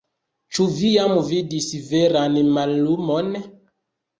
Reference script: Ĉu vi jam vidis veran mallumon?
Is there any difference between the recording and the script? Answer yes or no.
no